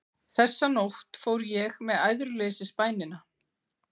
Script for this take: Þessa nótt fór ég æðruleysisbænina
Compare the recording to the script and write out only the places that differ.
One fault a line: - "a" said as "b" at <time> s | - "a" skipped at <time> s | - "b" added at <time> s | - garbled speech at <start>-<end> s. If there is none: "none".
- "með" added at 1.9 s